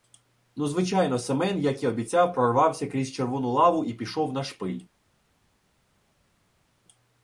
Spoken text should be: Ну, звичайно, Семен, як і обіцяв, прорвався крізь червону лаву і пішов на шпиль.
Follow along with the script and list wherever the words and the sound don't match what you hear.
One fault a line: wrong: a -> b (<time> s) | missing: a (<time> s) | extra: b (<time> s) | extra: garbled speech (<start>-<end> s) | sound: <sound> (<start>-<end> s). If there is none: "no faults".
no faults